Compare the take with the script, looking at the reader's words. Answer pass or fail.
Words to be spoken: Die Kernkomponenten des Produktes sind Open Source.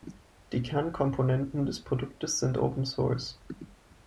pass